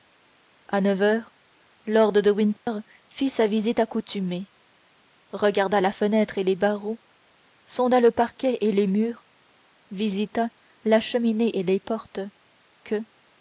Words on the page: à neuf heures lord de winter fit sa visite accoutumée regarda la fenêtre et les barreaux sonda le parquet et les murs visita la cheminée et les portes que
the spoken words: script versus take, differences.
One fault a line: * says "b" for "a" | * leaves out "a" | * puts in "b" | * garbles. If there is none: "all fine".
all fine